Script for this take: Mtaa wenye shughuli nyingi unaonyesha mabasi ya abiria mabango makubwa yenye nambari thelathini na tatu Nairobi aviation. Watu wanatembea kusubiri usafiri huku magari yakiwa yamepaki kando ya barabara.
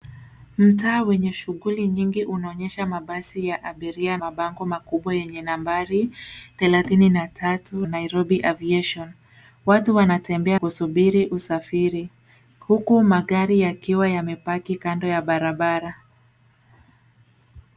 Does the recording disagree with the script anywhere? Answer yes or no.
no